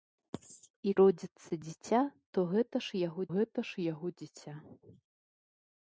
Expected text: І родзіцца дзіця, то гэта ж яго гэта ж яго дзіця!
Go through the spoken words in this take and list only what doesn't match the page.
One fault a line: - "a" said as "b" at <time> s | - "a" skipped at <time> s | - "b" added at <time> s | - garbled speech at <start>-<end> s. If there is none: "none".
none